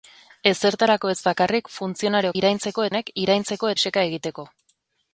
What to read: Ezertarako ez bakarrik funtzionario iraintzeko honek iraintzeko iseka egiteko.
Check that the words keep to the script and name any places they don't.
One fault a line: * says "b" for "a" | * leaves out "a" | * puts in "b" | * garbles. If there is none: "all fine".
all fine